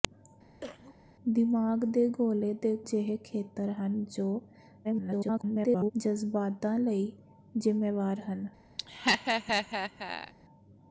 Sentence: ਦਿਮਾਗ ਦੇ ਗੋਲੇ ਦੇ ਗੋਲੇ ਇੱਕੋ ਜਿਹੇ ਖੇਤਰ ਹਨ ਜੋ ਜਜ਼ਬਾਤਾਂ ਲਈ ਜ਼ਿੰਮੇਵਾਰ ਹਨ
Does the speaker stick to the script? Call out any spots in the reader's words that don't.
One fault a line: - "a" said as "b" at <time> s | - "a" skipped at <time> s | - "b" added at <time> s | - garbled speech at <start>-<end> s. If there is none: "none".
- "ਗੋਲੇ ਇੱਕੋ" skipped at 2.8 s
- garbled speech at 4.8-5.9 s